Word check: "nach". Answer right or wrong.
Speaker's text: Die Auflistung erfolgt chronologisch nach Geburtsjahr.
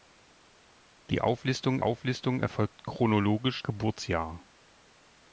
wrong